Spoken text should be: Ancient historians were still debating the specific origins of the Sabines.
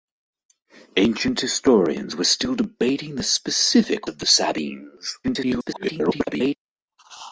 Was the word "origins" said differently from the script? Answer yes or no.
yes